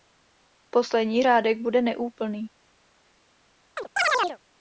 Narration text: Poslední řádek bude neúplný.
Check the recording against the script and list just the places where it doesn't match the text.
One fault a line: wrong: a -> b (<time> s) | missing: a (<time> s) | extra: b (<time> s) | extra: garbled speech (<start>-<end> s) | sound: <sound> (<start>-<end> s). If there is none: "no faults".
sound: chirp (3.8-4.4 s)